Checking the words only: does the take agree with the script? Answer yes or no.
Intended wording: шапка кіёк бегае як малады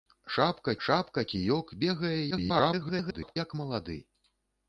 no